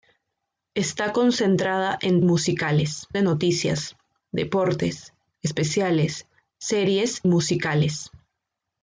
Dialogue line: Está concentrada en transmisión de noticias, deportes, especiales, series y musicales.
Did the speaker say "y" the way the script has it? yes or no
no